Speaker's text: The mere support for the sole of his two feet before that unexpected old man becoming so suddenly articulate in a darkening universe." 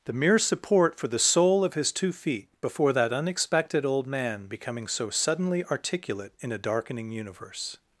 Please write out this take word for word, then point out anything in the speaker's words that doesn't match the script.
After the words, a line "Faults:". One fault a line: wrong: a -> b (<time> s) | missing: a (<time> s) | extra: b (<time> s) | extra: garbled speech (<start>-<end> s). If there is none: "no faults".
The mere support for the sole of his two feet before that unexpected old man becoming so suddenly articulate in a darkening universe."
Faults:
no faults